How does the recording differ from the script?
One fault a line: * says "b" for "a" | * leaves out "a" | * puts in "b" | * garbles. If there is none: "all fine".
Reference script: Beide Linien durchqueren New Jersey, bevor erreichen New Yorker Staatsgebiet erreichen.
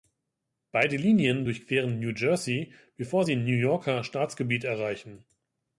* says "sie" for "erreichen"